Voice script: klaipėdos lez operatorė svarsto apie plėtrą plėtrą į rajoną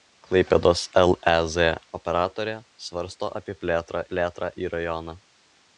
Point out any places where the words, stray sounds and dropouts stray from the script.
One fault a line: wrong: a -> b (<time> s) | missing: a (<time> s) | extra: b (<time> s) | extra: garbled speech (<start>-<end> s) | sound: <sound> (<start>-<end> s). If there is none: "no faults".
no faults